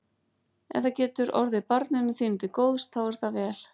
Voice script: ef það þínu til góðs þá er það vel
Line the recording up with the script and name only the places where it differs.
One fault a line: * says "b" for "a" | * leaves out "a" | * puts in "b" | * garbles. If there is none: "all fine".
* puts in "getur orðið barninu"